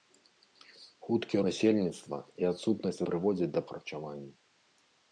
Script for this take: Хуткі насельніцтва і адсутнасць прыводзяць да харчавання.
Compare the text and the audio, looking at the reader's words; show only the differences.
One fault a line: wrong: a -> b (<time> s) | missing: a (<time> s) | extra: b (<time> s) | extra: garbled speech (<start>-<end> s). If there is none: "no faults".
no faults